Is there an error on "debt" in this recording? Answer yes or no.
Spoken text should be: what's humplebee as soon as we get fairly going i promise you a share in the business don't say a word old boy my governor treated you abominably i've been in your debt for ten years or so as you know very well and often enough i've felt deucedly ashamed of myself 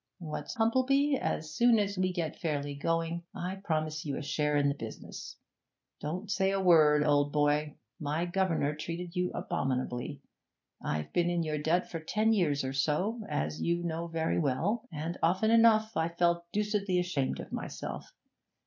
no